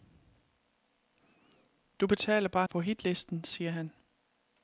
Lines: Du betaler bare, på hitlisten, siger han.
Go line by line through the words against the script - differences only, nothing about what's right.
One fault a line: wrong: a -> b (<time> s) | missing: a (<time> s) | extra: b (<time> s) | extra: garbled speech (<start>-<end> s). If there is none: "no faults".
no faults